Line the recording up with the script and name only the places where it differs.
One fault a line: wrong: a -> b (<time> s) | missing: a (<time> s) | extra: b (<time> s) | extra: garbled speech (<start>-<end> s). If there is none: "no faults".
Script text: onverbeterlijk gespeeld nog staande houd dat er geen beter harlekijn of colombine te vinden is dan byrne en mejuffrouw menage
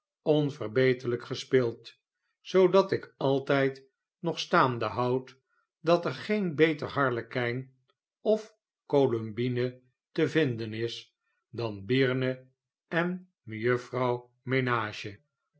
extra: zoodat ik altijd (2.4 s)